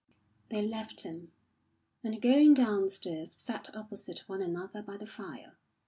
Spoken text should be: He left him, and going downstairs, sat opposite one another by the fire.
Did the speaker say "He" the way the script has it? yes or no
no